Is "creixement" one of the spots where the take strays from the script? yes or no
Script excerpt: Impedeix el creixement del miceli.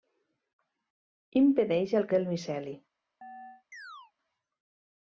yes